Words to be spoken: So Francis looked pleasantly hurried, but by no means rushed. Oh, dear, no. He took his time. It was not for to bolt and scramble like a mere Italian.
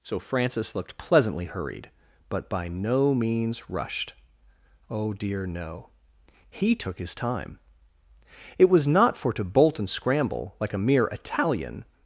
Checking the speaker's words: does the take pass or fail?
pass